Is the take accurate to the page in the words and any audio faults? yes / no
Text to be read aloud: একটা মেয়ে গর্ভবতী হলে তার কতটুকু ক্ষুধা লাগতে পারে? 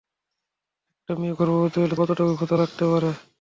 no